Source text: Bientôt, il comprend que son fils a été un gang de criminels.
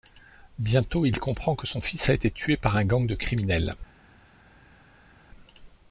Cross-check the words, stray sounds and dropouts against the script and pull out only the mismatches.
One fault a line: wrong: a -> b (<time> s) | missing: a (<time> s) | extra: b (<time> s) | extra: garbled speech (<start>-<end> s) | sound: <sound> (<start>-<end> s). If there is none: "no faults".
extra: tué par (2.3 s)